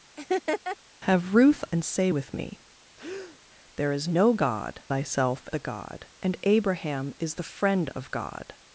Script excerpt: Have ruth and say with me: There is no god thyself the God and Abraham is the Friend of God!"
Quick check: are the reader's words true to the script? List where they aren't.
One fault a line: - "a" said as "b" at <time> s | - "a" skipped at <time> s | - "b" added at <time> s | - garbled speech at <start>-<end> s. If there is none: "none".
none